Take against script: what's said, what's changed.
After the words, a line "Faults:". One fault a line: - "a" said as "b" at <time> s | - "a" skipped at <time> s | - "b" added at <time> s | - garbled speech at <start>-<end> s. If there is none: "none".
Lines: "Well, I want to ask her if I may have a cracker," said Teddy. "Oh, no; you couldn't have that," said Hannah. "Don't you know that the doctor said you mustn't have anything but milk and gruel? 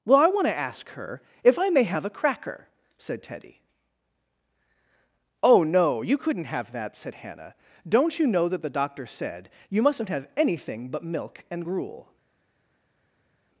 "Well, I want to ask her if I may have a cracker," said Teddy. "Oh, no; you couldn't have that," said Hannah. "Don't you know that the doctor said you mustn't have anything but milk and gruel?
Faults:
none